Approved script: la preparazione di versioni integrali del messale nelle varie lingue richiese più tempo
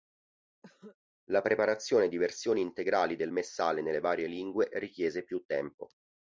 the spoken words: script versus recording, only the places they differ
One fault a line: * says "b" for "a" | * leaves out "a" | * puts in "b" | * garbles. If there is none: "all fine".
all fine